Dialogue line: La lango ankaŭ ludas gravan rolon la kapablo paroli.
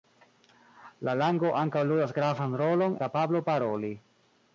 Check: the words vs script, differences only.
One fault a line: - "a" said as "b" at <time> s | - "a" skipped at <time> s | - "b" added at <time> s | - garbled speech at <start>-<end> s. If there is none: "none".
none